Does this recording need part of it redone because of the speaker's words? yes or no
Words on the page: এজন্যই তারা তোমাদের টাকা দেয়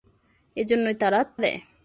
yes